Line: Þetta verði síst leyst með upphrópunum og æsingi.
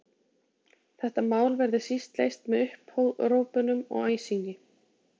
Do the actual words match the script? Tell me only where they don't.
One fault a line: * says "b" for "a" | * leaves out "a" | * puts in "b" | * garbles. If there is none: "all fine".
* puts in "mál"